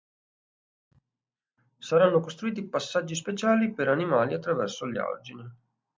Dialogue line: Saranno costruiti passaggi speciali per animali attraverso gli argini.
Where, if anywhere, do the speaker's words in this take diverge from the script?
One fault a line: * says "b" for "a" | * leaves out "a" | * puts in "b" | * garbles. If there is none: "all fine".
all fine